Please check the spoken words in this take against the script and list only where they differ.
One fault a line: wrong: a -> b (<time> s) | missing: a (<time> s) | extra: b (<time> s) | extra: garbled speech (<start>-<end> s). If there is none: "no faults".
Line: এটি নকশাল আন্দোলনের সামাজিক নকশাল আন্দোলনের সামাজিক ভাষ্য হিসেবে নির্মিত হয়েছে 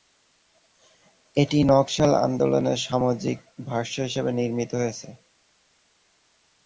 missing: নকশাল আন্দোলনের সামাজিক (3.4 s)